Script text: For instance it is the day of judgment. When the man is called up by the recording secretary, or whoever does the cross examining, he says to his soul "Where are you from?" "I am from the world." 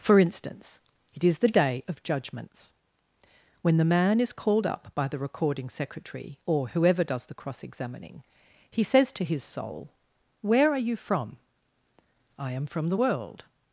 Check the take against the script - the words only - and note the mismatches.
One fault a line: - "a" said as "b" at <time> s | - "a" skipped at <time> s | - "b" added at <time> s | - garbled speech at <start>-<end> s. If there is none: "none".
- "judgment" said as "judgments" at 2.0 s